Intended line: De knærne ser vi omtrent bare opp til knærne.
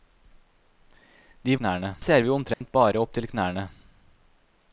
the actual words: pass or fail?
pass